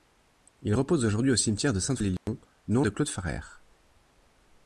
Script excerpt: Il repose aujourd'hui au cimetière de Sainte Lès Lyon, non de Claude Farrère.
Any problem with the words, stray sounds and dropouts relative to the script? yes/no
yes